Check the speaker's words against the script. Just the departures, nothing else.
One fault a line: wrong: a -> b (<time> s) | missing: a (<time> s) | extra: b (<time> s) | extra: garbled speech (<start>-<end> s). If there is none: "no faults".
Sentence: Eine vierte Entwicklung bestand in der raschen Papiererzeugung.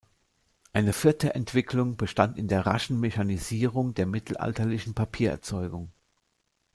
extra: Mechanisierung der mittelalterlichen (3.0 s)